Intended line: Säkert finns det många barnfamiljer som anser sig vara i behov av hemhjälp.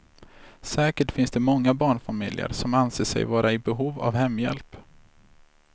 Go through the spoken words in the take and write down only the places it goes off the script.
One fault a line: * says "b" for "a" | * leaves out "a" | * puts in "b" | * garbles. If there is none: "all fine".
all fine